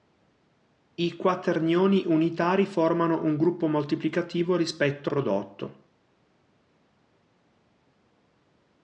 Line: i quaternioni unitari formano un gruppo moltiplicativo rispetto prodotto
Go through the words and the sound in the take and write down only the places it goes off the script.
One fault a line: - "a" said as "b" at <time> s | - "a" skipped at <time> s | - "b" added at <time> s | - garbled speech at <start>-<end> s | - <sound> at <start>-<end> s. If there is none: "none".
none